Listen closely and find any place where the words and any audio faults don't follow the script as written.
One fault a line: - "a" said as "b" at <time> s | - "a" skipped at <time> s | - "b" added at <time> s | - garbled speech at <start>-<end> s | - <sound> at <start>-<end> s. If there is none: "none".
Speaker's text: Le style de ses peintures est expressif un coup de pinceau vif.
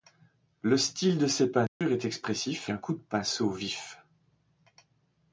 - dropout at 1.7-1.8 s